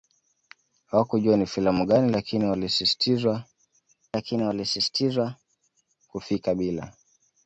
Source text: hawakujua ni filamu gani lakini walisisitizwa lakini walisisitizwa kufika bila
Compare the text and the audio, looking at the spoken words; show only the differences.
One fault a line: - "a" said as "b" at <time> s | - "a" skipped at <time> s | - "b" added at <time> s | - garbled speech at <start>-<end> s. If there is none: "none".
none